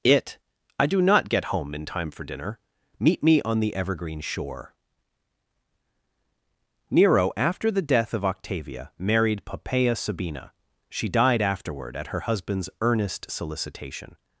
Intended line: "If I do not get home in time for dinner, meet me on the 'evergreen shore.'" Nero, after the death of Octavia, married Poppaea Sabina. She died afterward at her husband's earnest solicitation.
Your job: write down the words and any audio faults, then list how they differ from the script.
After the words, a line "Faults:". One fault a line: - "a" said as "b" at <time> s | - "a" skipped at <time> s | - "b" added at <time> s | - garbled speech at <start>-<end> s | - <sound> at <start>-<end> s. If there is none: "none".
"It I do not get home in time for dinner, meet me on the 'evergreen shore.'" Nero, after the death of Octavia, married Poppaea Sabina. She died afterward at her husband's earnest solicitation.
Faults:
- "If" said as "It" at 0.0 s